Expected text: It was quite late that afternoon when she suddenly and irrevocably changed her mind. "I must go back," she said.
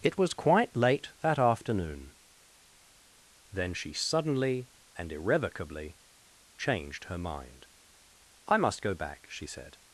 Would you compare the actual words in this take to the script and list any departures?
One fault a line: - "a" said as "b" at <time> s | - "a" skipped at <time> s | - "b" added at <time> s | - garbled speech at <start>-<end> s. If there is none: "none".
- "when" said as "then" at 3.5 s